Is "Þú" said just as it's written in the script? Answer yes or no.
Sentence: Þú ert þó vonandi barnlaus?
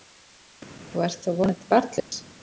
yes